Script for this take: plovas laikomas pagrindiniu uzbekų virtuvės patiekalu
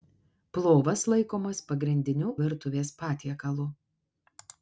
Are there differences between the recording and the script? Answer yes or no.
yes